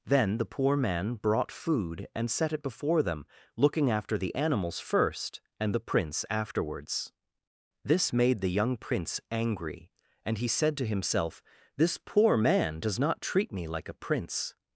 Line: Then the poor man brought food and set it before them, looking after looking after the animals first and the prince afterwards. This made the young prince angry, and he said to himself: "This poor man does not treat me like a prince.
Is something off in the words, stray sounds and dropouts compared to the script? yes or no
yes